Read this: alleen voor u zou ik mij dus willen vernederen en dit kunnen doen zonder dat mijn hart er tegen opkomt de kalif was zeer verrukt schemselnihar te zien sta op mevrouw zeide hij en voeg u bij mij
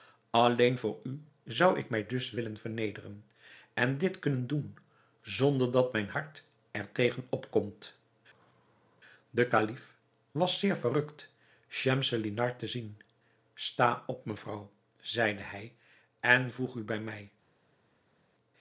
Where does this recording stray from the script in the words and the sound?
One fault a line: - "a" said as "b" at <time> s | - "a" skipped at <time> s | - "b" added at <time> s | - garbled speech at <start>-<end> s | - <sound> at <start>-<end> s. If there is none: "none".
none